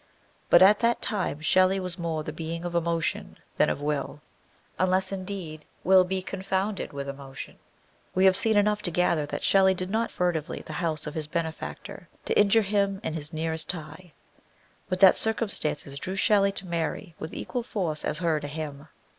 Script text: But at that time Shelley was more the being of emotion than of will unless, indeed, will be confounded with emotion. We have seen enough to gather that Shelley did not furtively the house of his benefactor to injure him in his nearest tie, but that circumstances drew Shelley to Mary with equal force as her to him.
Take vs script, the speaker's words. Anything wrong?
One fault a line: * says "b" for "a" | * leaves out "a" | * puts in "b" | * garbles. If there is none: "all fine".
all fine